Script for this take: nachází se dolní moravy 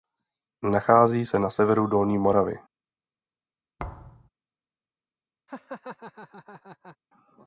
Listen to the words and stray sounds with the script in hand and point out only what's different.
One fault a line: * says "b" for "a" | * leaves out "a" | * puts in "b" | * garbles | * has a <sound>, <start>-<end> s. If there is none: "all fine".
* puts in "na severu"
* has a thud, 3.8-4.3 s
* has a laugh, 5.5-7.0 s